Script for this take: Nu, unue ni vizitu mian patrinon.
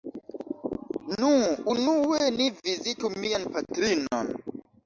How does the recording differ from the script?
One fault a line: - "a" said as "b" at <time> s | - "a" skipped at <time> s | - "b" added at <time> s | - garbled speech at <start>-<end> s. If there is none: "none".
none